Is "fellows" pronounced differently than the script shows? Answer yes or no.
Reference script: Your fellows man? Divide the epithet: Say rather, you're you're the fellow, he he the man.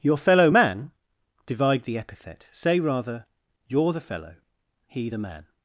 yes